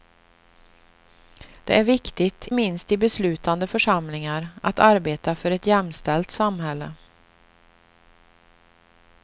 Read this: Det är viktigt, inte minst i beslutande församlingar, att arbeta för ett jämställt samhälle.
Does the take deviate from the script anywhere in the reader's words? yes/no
yes